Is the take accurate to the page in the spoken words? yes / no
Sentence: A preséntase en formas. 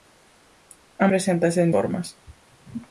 yes